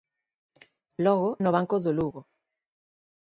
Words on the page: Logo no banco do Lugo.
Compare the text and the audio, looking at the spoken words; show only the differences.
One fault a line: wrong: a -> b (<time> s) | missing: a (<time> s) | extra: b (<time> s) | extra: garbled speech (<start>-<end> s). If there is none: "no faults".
no faults